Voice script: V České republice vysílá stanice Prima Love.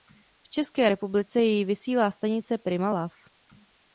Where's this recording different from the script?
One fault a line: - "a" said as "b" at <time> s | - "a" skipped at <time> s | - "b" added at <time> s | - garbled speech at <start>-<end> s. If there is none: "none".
- "jej" added at 1.4 s